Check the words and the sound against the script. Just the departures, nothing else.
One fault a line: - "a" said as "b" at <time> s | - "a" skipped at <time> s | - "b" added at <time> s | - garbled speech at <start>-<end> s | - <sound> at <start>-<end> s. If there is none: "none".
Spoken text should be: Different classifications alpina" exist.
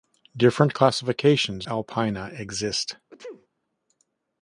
- sneeze at 3.1-3.5 s